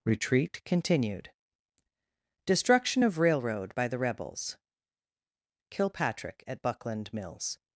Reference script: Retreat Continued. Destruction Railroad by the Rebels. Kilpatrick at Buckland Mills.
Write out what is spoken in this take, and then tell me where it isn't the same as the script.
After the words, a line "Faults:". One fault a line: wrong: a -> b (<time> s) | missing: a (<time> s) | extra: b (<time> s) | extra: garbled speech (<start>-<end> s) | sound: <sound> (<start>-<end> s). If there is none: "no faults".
Retreat Continued. Destruction of Railroad by the Rebels. Kilpatrick at Buckland Mills.
Faults:
extra: of (3.0 s)